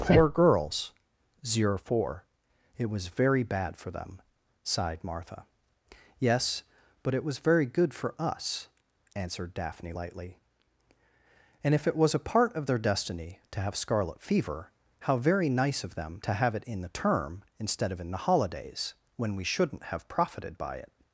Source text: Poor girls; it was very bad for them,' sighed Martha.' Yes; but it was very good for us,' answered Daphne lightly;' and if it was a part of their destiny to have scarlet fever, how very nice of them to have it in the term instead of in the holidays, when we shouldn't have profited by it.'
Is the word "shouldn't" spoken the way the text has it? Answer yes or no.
yes